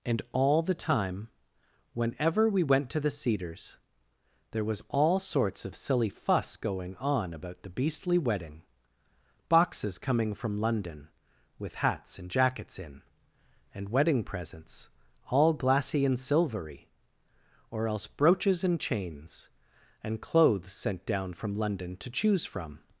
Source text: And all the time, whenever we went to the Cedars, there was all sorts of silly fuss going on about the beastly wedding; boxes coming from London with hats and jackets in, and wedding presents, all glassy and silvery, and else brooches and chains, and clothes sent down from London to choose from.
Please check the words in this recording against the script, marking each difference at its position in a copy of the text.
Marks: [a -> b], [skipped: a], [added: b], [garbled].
And all the time, whenever we went to the Cedars, there was all sorts of silly fuss going on about the beastly wedding; boxes coming from London with hats and jackets in, and wedding presents, all glassy and silvery, [and -> or] else brooches and chains, and clothes sent down from London to choose from.